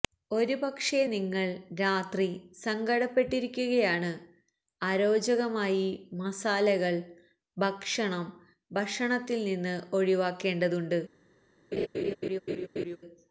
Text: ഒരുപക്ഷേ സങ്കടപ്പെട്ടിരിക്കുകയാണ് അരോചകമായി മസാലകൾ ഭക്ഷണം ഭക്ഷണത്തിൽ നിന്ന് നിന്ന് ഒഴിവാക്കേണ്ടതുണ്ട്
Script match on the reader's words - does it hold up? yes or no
no